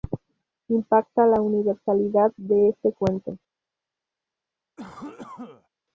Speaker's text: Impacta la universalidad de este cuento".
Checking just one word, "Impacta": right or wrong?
right